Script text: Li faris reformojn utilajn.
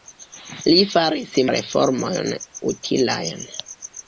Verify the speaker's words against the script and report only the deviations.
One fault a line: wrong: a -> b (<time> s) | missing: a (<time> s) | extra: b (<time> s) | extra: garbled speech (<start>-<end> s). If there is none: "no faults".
no faults